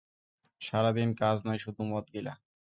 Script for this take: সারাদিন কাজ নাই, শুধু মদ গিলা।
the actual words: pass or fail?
pass